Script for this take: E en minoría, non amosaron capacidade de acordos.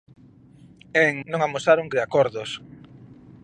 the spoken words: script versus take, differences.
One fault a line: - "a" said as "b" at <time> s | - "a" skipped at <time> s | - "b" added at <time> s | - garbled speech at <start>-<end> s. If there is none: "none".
- "minoría" skipped at 1.2 s
- "capacidade" skipped at 1.9 s